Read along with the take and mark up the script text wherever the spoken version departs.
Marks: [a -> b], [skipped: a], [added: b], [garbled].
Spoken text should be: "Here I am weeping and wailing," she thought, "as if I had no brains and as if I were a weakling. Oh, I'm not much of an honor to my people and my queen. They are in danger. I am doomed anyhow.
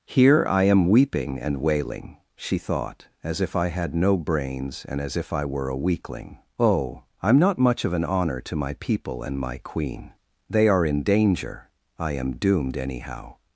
"Here I am weeping and wailing," she thought, "as if I had no brains and as if I were a weakling. Oh, I'm not much of an honor to my people and my queen. They are in danger. I am doomed anyhow.